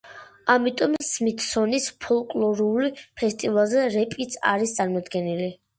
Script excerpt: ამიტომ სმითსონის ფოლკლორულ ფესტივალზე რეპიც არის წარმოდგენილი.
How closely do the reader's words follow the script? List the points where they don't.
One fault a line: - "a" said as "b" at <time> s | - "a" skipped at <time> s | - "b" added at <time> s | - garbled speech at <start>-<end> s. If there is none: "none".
none